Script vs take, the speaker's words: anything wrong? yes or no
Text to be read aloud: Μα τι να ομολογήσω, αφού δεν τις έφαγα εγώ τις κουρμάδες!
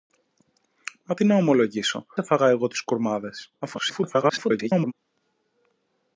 yes